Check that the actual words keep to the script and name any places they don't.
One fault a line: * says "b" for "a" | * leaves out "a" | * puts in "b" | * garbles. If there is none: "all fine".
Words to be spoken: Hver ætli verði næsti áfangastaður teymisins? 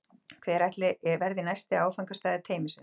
all fine